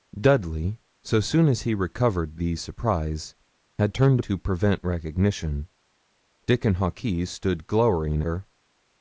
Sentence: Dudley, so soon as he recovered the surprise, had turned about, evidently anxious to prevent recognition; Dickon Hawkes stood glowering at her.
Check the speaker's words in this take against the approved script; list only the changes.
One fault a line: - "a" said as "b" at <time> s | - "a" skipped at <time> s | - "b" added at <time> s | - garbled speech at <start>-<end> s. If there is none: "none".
- "about evidently anxious" skipped at 4.2 s
- "at" skipped at 8.2 s